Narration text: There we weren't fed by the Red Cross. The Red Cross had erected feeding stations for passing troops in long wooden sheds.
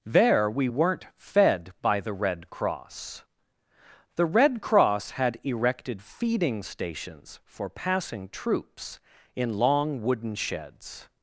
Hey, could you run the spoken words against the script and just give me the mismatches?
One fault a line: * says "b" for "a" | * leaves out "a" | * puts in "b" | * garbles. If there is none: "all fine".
all fine